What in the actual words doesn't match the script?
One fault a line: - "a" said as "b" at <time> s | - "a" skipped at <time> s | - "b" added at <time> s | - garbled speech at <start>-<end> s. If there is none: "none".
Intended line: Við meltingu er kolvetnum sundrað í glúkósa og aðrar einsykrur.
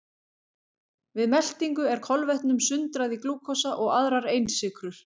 none